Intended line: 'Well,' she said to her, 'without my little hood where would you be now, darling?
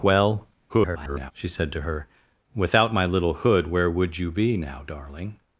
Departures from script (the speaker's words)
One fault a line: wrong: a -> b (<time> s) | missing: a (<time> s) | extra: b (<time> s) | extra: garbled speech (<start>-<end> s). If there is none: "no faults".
extra: garbled speech (0.7-1.3 s)